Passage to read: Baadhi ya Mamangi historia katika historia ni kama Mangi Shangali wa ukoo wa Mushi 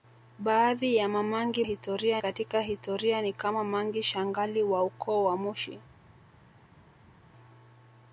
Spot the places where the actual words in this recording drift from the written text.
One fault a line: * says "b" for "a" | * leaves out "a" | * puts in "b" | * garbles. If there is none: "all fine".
all fine